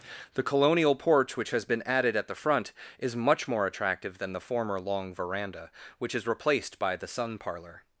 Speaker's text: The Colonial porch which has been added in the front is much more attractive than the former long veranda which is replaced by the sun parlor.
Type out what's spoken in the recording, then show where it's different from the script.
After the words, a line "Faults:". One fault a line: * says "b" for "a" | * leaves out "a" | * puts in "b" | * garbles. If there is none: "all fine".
The Colonial porch which has been added at the front is much more attractive than the former long veranda which is replaced by the sun parlor.
Faults:
* says "at" for "in"